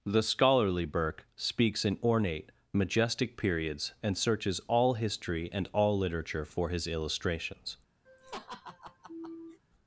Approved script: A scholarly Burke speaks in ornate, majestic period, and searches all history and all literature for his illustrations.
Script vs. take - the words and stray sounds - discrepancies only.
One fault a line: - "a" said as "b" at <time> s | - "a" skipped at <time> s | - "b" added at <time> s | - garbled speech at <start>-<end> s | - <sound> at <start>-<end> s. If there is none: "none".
- "A" said as "The" at 0.1 s
- "period" said as "periods" at 3.4 s
- laugh at 8.1-9.6 s